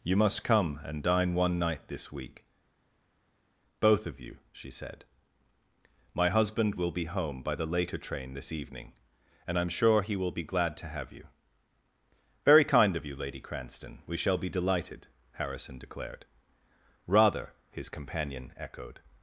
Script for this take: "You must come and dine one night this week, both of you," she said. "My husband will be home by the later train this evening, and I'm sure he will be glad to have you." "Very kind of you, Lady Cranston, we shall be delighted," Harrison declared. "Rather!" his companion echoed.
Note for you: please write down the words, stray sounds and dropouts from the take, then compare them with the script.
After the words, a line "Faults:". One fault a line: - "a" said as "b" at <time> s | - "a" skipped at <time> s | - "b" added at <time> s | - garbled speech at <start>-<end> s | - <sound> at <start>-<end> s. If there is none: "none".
"You must come and dine one night this week, both of you," she said. "My husband will be home by the later train this evening, and I'm sure he will be glad to have you." "Very kind of you, Lady Cranston, we shall be delighted," Harrison declared. "Rather!" his companion echoed.
Faults:
none